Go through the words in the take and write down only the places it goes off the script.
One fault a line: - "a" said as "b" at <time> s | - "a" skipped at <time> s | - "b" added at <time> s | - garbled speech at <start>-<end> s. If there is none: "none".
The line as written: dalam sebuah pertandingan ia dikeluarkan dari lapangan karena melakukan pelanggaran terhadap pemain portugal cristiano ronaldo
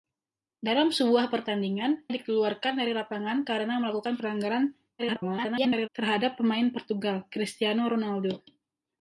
- "ia" skipped at 2.1 s
- garbled speech at 5.0-5.9 s